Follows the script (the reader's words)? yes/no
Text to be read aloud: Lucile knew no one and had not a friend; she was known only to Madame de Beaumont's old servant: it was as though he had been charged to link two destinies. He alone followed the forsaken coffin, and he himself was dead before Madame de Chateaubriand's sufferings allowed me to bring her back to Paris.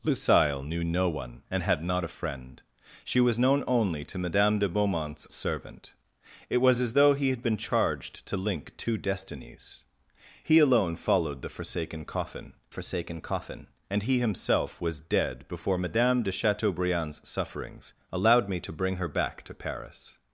no